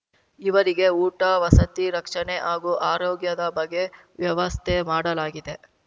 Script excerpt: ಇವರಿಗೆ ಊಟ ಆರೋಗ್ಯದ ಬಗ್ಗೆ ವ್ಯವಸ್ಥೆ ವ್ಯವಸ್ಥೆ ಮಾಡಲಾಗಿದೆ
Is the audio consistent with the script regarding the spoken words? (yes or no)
no